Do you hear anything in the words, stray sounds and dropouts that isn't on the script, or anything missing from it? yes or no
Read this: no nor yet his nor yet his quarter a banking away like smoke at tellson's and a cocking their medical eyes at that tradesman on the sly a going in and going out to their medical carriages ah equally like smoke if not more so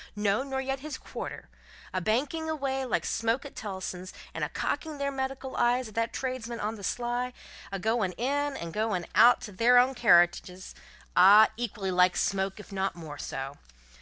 yes